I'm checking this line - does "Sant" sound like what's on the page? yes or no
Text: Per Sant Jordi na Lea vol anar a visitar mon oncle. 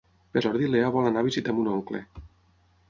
no